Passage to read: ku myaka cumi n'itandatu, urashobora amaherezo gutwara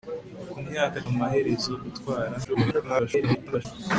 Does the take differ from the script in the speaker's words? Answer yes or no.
yes